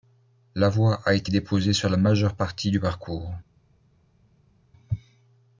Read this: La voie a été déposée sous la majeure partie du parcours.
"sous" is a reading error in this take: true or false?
true